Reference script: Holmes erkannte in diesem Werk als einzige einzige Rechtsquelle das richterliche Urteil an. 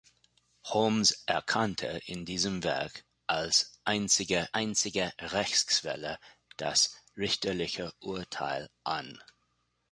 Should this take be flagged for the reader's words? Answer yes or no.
no